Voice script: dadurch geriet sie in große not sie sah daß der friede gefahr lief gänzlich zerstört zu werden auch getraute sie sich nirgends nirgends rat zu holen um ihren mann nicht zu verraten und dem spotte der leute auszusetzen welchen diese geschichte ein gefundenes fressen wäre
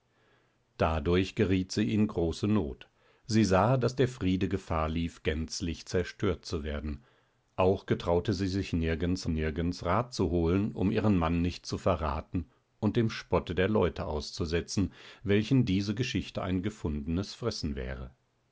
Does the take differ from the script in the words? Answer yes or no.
no